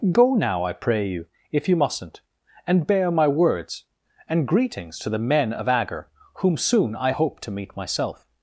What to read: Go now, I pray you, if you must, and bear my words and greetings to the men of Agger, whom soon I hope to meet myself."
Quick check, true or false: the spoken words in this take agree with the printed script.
false